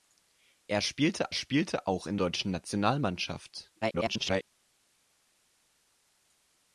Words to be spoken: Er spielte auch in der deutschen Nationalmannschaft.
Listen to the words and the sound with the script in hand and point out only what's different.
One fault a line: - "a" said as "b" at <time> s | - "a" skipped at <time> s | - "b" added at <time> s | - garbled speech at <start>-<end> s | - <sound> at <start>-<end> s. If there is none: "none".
- "spielte" added at 1.3 s
- "der" skipped at 2.2 s
- garbled speech at 3.8-4.5 s